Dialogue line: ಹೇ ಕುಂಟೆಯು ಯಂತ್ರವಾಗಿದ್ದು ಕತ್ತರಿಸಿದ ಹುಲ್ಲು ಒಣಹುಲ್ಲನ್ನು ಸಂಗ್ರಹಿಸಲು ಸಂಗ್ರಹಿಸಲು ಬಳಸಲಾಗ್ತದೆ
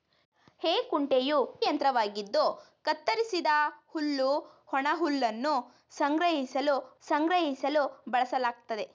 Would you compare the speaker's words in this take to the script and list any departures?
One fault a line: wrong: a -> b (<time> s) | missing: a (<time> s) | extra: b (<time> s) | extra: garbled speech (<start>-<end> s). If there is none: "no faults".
no faults